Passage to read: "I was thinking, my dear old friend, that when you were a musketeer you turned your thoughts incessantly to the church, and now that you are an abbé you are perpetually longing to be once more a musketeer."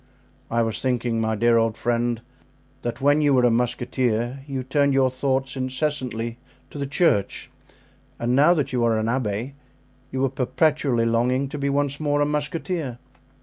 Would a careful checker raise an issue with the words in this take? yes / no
no